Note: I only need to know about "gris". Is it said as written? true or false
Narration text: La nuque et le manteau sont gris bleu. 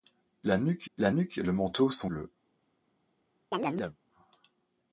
false